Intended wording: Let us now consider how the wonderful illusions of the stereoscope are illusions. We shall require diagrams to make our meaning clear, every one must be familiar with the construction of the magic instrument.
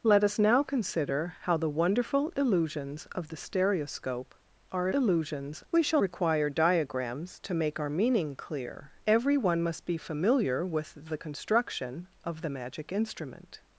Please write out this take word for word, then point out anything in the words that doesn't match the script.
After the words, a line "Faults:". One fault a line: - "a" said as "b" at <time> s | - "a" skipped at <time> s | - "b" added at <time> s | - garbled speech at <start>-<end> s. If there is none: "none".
Let us now consider how the wonderful illusions of the stereoscope are illusions. We shall require diagrams to make our meaning clear, every one must be familiar with the construction of the magic instrument.
Faults:
none